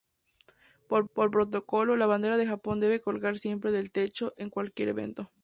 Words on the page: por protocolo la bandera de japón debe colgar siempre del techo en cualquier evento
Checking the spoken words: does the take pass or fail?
fail